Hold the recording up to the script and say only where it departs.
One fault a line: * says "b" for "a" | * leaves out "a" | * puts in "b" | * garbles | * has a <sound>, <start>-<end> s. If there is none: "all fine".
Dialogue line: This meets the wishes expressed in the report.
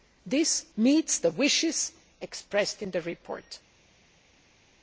all fine